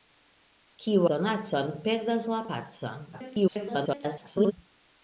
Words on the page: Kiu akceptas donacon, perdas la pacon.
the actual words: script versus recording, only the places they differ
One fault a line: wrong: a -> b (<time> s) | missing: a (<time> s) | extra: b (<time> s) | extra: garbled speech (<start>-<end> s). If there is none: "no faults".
missing: akceptas (1.0 s)
extra: garbled speech (3.1-4.5 s)